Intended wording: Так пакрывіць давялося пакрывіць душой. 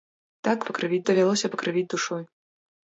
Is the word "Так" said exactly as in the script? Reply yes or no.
yes